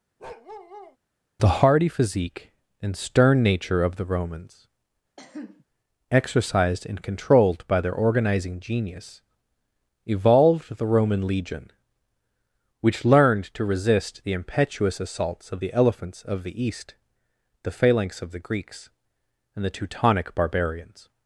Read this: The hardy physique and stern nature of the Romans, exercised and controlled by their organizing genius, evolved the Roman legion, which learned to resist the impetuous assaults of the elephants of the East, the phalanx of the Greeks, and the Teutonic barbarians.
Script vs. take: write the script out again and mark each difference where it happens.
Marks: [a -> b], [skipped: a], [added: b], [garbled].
The hardy physique and stern nature of the Romans, exercised and controlled by their organizing genius, evolved the Roman legion, which learned to resist the impetuous assaults of the elephants of the East, the phalanx of the Greeks, and the Teutonic barbarians.